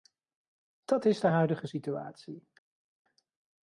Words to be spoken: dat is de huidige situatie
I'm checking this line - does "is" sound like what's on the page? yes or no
yes